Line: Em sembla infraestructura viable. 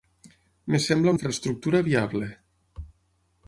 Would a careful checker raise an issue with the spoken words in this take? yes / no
no